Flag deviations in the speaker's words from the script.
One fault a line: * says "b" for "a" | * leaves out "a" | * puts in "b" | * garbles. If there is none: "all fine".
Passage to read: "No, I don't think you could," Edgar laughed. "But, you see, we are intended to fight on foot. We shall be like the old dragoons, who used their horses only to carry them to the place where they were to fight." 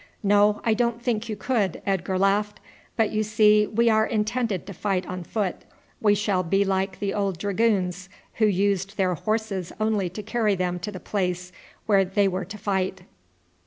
all fine